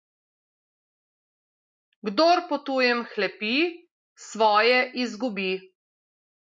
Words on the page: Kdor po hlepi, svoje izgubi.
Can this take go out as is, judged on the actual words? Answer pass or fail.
fail